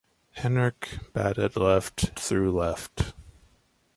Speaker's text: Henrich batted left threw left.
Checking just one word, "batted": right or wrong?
right